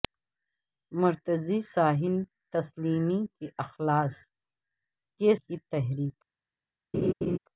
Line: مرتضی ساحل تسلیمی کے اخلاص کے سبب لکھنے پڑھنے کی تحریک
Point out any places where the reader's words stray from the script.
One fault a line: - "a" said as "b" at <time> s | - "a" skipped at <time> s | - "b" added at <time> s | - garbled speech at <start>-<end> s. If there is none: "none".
- "سبب لکھنے پڑھنے" skipped at 5.3 s